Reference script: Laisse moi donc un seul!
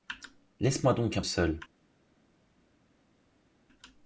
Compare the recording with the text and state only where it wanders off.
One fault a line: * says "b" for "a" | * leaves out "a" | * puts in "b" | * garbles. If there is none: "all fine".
all fine